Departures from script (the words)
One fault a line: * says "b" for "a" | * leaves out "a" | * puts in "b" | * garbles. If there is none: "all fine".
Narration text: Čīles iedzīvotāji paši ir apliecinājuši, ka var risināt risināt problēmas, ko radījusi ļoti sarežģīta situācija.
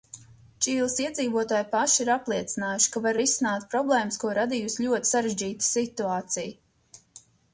* leaves out "risināt"